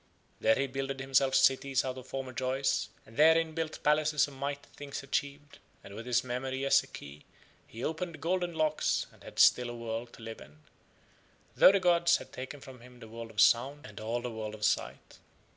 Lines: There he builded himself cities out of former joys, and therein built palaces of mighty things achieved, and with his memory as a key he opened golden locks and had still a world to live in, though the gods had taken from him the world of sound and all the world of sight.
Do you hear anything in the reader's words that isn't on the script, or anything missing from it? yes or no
no